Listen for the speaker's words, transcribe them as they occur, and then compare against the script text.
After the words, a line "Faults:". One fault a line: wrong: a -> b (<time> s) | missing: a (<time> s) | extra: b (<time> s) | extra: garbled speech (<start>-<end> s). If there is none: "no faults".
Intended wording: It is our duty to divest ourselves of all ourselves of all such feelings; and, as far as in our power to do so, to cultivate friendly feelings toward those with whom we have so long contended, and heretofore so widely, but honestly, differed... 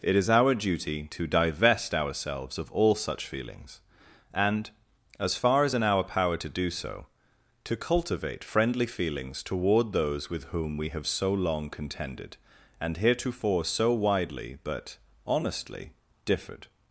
It is our duty to divest ourselves of all such feelings; and, as far as in our power to do so, to cultivate friendly feelings toward those with whom we have so long contended, and heretofore so widely, but honestly, differed...
Faults:
missing: ourselves of all (3.0 s)